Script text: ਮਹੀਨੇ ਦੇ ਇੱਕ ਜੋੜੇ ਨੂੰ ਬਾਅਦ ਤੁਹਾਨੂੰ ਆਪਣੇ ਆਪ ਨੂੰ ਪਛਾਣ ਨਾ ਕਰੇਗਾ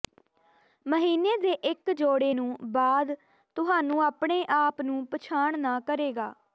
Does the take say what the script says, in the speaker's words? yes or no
yes